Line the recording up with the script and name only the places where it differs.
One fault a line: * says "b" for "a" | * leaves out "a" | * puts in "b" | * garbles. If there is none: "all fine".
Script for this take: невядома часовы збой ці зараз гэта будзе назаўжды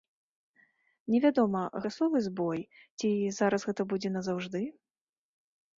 all fine